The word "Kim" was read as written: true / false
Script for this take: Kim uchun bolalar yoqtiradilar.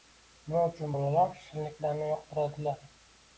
false